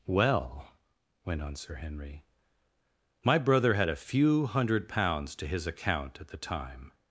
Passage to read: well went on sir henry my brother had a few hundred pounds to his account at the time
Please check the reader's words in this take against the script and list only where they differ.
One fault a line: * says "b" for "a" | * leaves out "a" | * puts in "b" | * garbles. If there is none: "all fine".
all fine